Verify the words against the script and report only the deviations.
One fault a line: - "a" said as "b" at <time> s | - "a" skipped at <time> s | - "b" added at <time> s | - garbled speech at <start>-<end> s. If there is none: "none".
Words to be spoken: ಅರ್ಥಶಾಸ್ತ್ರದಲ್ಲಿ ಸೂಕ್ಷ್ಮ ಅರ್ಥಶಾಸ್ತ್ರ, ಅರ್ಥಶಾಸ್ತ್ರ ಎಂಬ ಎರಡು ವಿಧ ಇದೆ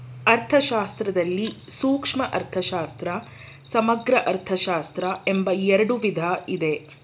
- "ಸಮಗ್ರ" added at 3.6 s